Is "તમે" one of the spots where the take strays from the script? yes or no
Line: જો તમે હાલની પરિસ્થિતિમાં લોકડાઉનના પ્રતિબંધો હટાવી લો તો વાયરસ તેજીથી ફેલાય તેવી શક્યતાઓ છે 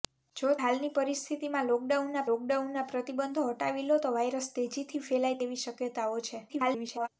yes